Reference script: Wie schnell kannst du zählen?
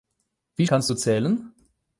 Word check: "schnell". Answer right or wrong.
wrong